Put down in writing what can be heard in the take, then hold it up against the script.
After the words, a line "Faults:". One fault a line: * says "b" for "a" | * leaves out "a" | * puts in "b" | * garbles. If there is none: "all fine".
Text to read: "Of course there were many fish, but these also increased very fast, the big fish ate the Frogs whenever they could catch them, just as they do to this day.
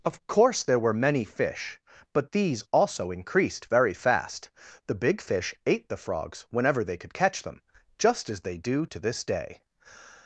"Of course there were many fish, but these also increased very fast, the big fish ate the Frogs whenever they could catch them, just as they do to this day.
Faults:
all fine